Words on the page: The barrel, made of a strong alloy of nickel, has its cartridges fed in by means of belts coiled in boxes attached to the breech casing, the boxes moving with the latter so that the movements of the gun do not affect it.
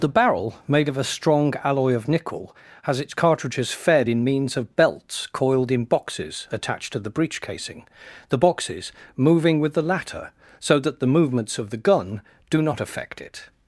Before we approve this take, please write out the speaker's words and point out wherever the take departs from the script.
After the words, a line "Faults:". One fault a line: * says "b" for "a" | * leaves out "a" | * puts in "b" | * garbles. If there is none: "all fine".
The barrel, made of a strong alloy of nickel, has its cartridges fed in means of belts coiled in boxes attached to the breech casing, the boxes moving with the latter so that the movements of the gun do not affect it.
Faults:
* leaves out "by"